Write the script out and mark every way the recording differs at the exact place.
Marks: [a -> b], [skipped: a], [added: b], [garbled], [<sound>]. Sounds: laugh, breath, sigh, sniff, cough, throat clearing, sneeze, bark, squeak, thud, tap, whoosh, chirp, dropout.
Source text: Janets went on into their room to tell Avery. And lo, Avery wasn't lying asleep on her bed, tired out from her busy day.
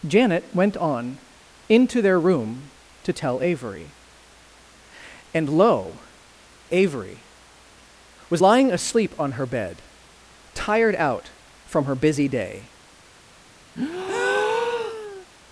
[Janets -> Janet] went on into their room to tell Avery. And lo, Avery [wasn't -> was] lying asleep on her bed, tired out from her busy day. [breath]